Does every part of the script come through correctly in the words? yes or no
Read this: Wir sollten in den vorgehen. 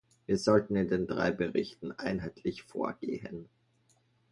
no